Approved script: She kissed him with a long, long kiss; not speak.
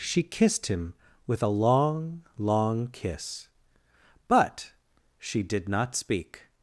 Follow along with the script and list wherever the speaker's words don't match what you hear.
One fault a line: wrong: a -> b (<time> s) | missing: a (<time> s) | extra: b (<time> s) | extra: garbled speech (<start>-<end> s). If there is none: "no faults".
extra: but she did (4.3 s)